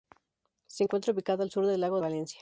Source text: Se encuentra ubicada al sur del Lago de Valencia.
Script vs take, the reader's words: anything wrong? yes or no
yes